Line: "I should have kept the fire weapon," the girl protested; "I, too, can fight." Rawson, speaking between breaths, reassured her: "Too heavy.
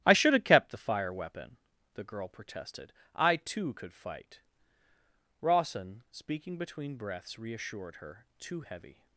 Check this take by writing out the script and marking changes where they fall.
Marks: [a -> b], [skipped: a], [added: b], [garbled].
"I should have kept the fire weapon," the girl protested; "I, too, [can -> could] fight." Rawson, speaking between breaths, reassured her: "Too heavy.